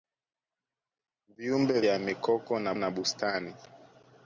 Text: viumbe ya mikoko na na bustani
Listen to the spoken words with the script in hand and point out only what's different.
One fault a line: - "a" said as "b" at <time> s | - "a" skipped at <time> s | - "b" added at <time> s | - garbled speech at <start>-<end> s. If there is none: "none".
none